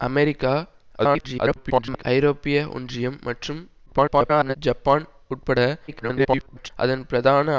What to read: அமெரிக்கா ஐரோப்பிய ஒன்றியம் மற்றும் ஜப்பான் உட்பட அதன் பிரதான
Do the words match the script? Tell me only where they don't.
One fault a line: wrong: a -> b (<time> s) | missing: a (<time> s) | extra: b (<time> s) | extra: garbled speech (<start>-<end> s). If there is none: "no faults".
extra: garbled speech (1.0-2.0 s)
extra: garbled speech (3.9-4.6 s)
extra: garbled speech (5.9-6.7 s)